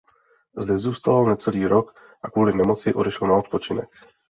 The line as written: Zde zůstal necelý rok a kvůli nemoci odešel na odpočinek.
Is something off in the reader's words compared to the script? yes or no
no